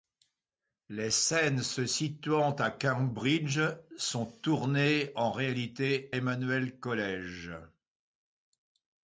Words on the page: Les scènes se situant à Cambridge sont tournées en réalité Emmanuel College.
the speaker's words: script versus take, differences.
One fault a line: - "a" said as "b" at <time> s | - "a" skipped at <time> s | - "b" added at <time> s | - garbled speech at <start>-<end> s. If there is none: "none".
none